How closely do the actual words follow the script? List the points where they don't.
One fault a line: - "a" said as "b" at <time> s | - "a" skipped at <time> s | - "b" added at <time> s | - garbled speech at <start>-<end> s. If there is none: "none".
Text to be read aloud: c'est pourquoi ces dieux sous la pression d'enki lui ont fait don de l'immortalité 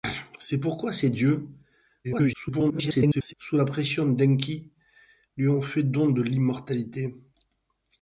- garbled speech at 2.0-3.3 s